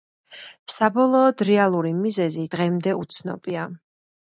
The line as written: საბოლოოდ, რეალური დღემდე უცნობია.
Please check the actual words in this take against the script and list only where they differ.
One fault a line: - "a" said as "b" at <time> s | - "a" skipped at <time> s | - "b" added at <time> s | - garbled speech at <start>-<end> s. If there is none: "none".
- "მიზეზი" added at 2.0 s